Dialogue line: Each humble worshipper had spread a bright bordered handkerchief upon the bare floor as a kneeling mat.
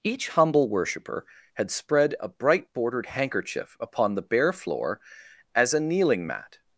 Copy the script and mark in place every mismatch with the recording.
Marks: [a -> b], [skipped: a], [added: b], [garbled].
Each humble worshipper had spread a bright bordered handkerchief upon the bare floor as a kneeling mat.